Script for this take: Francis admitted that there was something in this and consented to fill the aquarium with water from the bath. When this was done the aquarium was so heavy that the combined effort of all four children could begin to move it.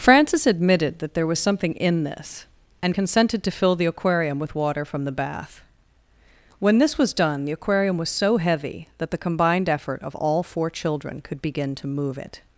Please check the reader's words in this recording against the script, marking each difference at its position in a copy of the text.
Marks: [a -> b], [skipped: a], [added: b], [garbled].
Francis admitted that there was something in this and consented to fill the aquarium with water from the bath. When this was done the aquarium was so heavy that the combined effort of all four children could begin to move it.